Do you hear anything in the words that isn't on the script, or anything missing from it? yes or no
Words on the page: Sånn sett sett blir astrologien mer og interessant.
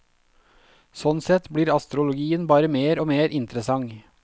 yes